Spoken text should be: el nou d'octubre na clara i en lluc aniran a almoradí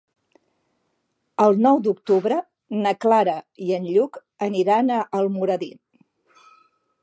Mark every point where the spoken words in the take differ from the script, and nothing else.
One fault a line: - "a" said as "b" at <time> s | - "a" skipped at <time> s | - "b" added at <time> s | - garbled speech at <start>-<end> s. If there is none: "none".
none